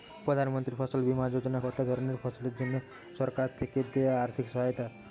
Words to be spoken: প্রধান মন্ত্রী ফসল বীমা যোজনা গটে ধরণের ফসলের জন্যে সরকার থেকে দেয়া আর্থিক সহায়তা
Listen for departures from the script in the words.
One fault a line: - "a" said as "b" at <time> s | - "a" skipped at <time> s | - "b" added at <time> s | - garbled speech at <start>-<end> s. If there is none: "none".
none